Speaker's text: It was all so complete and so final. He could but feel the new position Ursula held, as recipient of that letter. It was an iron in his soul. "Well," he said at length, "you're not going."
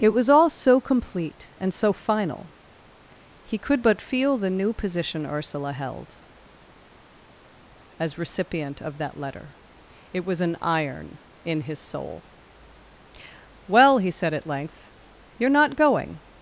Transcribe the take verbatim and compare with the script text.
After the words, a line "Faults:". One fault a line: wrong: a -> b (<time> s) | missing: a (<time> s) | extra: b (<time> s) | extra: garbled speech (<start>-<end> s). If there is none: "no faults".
It was all so complete and so final. He could but feel the new position Ursula held, as recipient of that letter. It was an iron in his soul. "Well," he said at length, "you're not going."
Faults:
no faults